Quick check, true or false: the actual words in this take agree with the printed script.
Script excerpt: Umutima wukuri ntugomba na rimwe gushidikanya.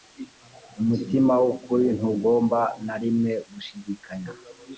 true